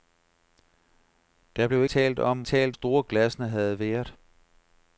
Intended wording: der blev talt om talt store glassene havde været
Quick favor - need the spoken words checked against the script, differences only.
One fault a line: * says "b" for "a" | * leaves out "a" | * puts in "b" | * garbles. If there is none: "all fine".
all fine